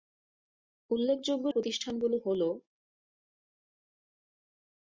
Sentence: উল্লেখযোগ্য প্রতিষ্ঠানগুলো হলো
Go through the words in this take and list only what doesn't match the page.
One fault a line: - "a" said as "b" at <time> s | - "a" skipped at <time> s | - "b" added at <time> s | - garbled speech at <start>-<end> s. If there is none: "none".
none